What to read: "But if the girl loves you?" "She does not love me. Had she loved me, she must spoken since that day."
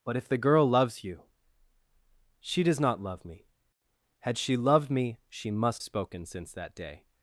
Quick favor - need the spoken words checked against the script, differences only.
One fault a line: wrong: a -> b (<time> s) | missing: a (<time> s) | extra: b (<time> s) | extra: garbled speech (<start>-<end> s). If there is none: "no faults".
no faults